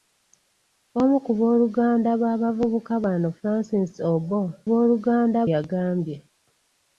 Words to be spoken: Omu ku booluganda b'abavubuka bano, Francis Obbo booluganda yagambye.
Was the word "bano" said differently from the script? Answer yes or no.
no